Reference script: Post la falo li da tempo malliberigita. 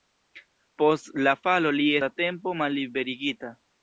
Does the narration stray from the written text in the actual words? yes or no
no